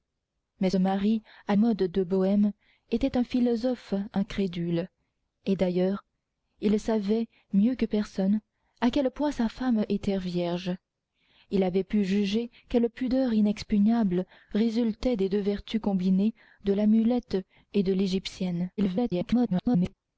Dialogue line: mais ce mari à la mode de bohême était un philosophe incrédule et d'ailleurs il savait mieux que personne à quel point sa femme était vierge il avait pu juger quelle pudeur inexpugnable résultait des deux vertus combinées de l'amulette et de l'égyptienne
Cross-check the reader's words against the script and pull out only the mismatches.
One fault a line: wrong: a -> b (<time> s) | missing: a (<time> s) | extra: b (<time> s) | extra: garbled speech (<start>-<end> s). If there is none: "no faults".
missing: ce (0.7 s)
missing: la (1.5 s)
extra: garbled speech (18.8-19.9 s)